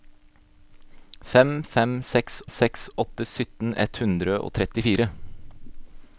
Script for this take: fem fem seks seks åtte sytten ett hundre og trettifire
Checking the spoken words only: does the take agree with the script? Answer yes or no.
yes